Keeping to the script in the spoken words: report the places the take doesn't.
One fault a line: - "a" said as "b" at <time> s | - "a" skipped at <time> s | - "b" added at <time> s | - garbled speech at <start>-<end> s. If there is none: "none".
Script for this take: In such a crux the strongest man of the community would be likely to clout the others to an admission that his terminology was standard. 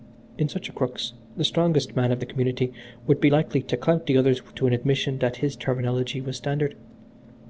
none